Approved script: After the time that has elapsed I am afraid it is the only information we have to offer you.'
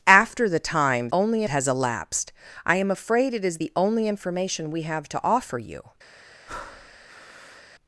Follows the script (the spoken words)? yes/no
no